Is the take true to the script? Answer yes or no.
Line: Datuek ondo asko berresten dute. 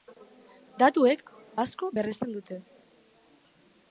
no